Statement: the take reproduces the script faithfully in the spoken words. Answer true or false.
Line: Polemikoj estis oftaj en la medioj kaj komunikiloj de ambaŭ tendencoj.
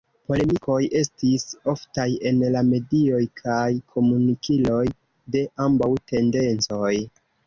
true